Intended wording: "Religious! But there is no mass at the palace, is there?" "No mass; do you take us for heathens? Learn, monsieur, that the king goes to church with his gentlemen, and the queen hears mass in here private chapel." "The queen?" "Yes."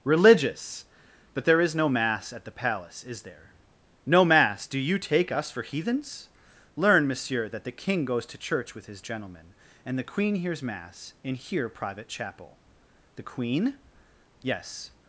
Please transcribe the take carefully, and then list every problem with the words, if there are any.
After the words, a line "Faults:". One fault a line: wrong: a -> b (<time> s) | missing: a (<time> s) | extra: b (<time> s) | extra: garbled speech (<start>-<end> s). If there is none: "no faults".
"Religious! But there is no mass at the palace, is there?" "No mass; do you take us for heathens? Learn, monsieur, that the king goes to church with his gentlemen, and the queen hears mass in here private chapel." "The queen?" "Yes."
Faults:
no faults